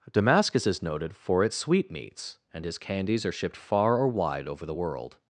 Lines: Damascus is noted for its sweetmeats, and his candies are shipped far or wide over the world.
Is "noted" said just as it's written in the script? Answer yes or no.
yes